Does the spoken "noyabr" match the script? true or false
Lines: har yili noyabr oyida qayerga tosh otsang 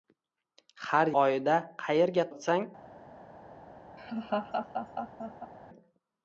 false